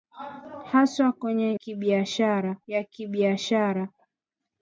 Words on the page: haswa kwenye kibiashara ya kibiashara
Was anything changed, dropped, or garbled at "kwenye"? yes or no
no